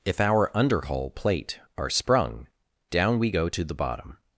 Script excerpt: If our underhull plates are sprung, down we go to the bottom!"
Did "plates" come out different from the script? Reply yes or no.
yes